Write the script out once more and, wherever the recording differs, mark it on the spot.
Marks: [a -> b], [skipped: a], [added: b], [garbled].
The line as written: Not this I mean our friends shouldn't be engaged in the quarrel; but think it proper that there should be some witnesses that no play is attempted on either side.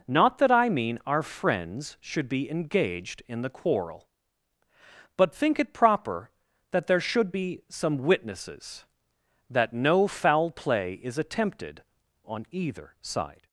Not [this -> that] I mean our friends [shouldn't -> should] be engaged in the quarrel; but think it proper that there should be some witnesses that no [added: foul] play is attempted on either side.